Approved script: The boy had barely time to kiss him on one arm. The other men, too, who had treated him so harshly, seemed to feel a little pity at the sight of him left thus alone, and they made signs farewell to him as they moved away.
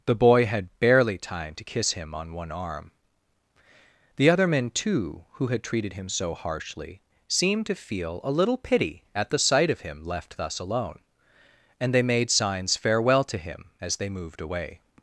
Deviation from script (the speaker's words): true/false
false